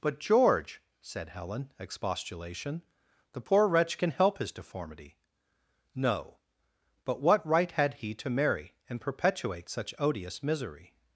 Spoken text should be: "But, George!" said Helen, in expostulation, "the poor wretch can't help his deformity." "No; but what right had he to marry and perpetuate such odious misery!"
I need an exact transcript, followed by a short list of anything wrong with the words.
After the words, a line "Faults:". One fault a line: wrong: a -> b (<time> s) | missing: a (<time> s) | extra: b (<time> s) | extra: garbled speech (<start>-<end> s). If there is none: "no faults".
"But, George!" said Helen, expostulation, "the poor wretch can help his deformity." "No; but what right had he to marry and perpetuate such odious misery!"
Faults:
missing: in (1.7 s)
wrong: can't -> can (4.0 s)